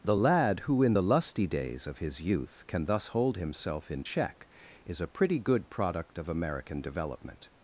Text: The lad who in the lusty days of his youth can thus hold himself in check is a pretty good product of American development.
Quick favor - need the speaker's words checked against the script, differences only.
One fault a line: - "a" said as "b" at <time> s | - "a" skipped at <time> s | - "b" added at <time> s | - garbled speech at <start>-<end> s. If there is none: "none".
none